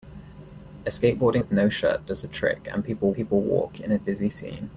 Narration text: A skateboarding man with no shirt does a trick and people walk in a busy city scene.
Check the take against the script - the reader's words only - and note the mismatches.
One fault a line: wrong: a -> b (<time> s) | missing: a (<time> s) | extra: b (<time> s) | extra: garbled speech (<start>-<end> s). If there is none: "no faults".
missing: man (1.4 s)
extra: people (3.1 s)
missing: city (4.3 s)